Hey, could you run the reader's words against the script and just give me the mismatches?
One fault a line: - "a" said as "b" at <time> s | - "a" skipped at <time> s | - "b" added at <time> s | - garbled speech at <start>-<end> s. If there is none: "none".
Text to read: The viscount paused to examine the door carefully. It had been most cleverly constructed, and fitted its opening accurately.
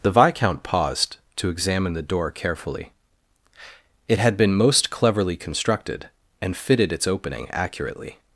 none